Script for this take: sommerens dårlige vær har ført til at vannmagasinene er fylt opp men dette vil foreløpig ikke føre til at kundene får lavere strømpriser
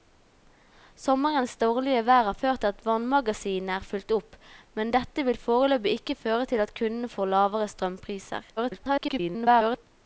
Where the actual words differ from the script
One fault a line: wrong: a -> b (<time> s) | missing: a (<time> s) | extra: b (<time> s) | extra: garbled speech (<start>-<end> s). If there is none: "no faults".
extra: garbled speech (8.6-9.9 s)